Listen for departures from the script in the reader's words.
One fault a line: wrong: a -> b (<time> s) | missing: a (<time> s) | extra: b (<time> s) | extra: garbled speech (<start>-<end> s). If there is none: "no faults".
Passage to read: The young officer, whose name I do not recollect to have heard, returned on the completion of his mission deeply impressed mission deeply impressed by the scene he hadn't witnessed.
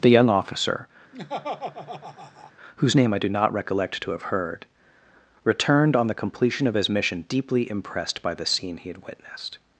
missing: mission deeply impressed (8.2 s)
wrong: hadn't -> had (8.9 s)